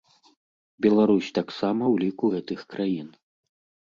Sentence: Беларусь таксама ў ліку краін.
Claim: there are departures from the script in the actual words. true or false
true